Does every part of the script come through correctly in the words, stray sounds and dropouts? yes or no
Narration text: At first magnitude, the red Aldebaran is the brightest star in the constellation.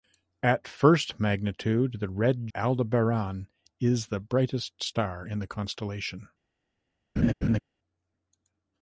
no